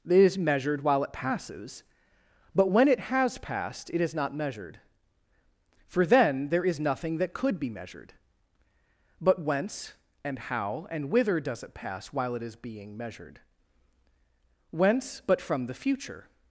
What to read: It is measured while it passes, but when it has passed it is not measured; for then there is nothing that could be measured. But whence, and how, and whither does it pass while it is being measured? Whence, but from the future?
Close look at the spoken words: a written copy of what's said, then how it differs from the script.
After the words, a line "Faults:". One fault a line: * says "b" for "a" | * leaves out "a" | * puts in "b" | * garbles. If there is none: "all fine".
It is measured while it passes, but when it has passed it is not measured; for then there is nothing that could be measured. But whence, and how, and whither does it pass while it is being measured? Whence, but from the future?
Faults:
all fine